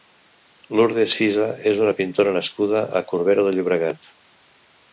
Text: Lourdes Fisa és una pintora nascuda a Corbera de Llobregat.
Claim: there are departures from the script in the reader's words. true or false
false